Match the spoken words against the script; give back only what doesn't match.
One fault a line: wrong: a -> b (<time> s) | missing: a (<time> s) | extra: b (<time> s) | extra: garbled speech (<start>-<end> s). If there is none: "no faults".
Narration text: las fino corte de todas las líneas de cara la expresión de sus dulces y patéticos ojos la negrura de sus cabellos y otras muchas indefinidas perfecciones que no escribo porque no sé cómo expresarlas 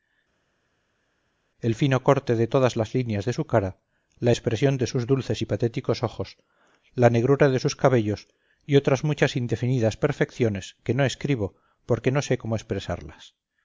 wrong: las -> el (1.6 s)
extra: su (3.3 s)